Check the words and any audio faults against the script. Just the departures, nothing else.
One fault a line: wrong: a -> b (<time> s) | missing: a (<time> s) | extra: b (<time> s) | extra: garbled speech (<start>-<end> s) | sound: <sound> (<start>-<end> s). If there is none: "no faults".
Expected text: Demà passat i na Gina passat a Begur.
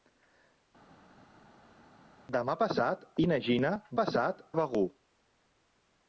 no faults